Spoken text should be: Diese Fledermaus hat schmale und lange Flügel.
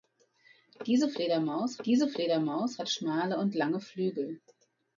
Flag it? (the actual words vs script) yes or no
yes